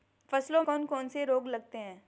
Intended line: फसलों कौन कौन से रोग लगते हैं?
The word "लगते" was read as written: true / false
true